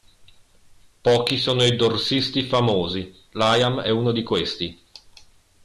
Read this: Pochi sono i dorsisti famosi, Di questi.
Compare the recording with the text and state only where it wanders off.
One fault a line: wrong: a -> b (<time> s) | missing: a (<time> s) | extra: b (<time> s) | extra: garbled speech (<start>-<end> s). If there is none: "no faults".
extra: Liam è uno (3.3 s)